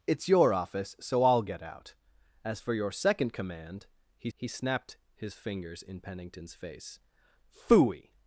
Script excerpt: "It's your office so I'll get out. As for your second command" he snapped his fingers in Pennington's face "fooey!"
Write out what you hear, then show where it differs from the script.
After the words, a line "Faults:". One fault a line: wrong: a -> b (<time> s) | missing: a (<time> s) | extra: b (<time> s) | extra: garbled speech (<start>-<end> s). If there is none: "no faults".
"It's your office so I'll get out. As for your second command" he he snapped his fingers in Pennington's face "fooey!"
Faults:
extra: he (4.3 s)